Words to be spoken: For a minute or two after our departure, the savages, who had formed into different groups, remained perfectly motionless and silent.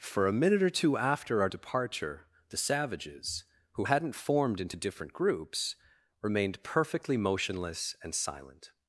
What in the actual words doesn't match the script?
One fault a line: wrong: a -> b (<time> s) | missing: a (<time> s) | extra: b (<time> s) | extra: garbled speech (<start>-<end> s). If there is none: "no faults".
wrong: had -> hadn't (3.8 s)